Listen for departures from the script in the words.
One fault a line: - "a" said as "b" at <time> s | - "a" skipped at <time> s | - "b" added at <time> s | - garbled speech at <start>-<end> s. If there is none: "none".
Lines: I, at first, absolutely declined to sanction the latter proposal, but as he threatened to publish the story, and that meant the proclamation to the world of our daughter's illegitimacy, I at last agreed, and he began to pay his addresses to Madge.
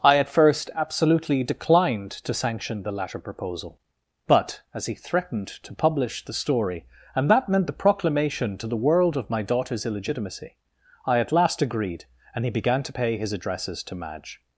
- "our" said as "my" at 9.3 s